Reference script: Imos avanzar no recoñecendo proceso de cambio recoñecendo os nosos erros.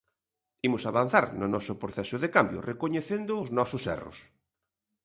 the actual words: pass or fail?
fail